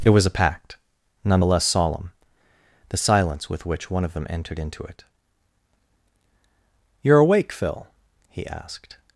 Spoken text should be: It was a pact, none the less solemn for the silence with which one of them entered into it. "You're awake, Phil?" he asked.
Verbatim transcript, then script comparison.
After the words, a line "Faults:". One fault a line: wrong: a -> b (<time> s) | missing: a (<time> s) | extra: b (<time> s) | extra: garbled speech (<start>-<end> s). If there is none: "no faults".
It was a pact, none the less solemn the silence with which one of them entered into it. "You're awake, Phil?" he asked.
Faults:
missing: for (2.1 s)